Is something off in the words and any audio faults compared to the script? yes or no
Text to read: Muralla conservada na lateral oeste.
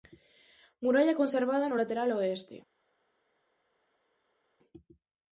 yes